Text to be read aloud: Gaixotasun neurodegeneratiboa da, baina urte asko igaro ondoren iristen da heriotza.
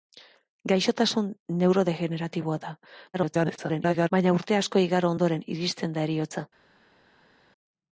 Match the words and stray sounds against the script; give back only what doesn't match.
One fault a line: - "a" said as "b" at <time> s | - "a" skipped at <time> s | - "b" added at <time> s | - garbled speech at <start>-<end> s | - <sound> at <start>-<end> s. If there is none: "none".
- garbled speech at 3.1-4.1 s